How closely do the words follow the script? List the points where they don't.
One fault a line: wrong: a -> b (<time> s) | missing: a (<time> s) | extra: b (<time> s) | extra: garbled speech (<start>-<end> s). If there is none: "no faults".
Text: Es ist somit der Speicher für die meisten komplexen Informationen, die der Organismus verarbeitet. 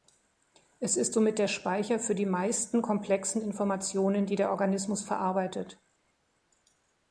no faults